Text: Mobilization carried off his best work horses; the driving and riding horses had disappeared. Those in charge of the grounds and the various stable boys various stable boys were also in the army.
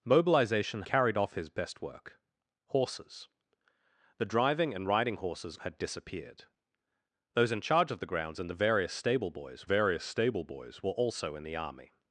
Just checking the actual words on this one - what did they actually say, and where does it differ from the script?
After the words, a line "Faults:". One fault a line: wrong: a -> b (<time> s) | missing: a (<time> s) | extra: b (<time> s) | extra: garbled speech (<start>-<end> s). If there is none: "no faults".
Mobilization carried off his best work horses; the driving and riding horses had disappeared. Those in charge of the grounds and the various stable boys various stable boys were also in the army.
Faults:
no faults